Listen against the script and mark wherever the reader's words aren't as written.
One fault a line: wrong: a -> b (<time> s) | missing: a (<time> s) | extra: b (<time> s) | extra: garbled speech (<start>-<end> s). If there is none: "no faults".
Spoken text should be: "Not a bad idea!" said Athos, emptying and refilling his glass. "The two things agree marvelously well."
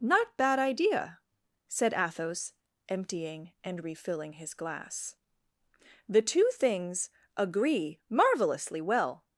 missing: a (0.3 s)